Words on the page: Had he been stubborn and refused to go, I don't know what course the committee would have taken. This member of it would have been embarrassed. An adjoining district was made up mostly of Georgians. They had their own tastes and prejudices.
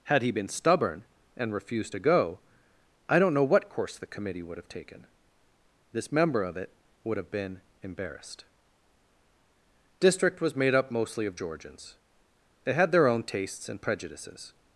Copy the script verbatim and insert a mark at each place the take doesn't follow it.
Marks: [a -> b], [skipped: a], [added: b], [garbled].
Had he been stubborn and refused to go, I don't know what course the committee would have taken. This member of it would have been embarrassed. [skipped: An adjoining] district was made up mostly of Georgians. They had their own tastes and prejudices.